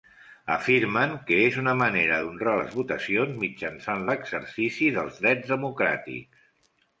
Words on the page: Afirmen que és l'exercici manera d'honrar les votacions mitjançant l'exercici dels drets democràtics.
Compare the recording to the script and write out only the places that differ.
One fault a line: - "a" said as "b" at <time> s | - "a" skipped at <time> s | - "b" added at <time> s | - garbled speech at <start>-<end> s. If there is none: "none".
- "l'exercici" said as "una" at 1.6 s